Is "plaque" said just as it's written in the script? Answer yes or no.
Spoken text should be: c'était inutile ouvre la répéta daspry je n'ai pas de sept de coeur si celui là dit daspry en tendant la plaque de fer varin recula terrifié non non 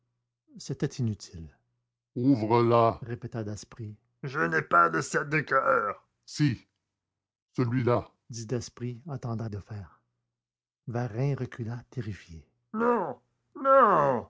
no